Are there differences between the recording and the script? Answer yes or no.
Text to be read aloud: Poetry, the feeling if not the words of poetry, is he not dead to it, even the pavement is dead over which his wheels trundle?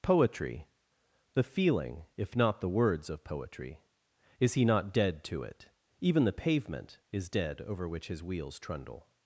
no